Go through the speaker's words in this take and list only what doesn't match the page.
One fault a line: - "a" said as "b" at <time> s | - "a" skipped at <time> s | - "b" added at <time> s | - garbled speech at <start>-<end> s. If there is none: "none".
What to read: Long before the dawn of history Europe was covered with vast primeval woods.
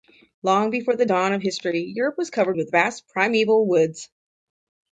none